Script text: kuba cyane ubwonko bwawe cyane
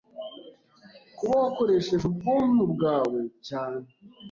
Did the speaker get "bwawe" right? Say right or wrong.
right